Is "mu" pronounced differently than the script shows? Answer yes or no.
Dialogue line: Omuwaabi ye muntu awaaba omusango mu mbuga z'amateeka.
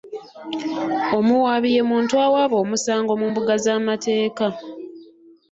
no